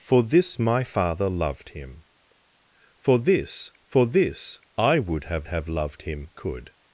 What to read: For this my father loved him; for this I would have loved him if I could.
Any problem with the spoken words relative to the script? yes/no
yes